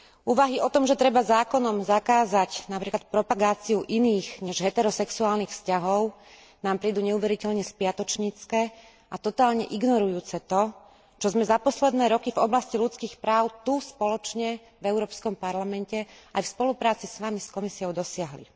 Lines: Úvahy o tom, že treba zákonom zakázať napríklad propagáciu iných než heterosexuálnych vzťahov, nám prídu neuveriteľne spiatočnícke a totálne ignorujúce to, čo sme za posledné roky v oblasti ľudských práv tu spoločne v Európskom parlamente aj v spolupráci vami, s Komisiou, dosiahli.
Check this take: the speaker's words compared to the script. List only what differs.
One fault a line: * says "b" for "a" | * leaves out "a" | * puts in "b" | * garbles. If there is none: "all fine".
* puts in "s"